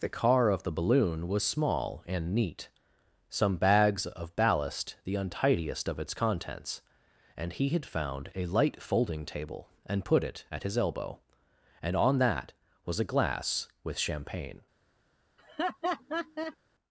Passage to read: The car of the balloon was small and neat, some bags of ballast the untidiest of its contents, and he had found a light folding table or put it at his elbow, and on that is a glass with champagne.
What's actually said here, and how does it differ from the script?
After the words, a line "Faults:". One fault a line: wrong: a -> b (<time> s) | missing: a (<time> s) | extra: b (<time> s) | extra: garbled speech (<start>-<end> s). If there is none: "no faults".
The car of the balloon was small and neat, some bags of ballast the untidiest of its contents, and he had found a light folding table and put it at his elbow, and on that was a glass with champagne.
Faults:
wrong: or -> and (9.8 s)
wrong: is -> was (12.8 s)